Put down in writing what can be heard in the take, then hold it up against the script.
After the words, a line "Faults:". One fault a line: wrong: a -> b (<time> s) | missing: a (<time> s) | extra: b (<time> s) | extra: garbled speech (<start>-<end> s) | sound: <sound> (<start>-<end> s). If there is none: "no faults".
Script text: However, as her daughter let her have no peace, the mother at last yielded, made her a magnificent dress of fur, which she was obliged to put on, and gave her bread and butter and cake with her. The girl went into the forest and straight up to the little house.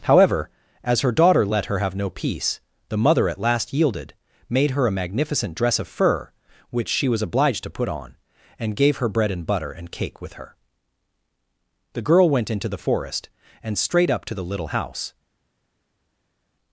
However, as her daughter let her have no peace, the mother at last yielded, made her a magnificent dress of fur, which she was obliged to put on, and gave her bread and butter and cake with her. The girl went into the forest and straight up to the little house.
Faults:
no faults